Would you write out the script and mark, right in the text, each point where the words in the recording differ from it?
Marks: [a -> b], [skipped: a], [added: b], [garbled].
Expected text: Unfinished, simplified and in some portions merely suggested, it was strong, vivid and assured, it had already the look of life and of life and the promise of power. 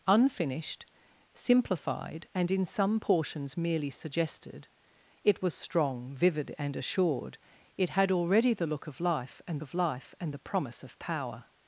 Unfinished, simplified and in some portions merely suggested, it was strong, vivid and assured, it had already the look of life and of life and the promise of power.